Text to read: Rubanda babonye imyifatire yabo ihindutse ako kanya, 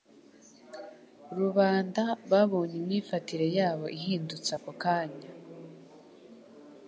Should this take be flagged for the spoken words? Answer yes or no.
no